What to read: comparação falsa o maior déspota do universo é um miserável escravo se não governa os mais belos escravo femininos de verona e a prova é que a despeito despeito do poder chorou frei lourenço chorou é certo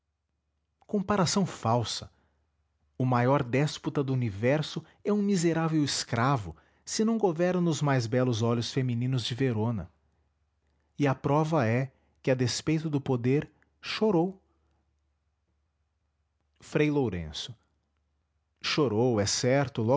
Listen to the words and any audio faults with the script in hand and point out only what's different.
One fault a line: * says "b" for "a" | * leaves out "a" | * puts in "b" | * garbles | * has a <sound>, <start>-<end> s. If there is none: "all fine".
* says "olhos" for "escravo"
* leaves out "despeito"